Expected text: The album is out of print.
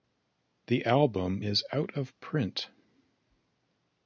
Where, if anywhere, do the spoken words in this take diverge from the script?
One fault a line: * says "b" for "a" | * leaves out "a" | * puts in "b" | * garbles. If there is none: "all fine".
all fine